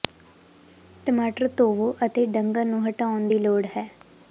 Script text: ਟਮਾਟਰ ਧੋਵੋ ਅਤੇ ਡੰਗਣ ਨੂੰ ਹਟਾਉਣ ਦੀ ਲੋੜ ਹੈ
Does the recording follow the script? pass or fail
pass